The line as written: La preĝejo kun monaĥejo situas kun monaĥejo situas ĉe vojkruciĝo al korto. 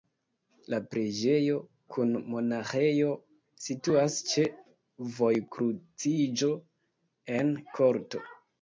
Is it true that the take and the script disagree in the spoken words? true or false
true